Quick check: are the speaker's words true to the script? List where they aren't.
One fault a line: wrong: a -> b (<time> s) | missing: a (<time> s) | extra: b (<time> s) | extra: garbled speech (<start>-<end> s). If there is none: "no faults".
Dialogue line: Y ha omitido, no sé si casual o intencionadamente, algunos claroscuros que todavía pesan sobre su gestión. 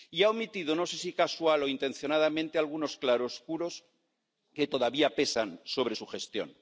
no faults